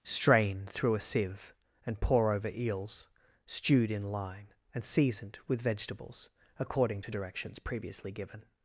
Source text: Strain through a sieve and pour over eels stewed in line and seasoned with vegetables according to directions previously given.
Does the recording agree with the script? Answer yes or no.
yes